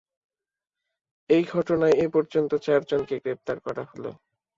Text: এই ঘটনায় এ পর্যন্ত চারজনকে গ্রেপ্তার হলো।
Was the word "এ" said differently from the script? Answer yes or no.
no